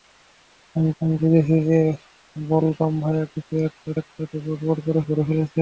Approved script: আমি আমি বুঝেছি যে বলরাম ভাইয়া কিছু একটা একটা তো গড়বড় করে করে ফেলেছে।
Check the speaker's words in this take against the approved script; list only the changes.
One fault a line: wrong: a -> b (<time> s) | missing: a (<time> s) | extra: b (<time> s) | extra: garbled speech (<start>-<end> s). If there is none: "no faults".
no faults